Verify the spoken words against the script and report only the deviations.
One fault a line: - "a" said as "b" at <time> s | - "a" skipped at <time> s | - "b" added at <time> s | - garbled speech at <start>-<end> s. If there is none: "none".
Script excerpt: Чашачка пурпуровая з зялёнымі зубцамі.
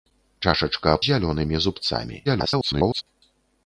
- "пурпуровая з" skipped at 0.9 s
- garbled speech at 2.2-3.0 s